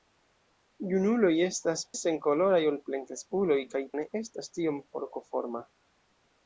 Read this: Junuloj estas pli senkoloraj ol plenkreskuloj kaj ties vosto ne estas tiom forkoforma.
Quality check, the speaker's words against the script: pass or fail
fail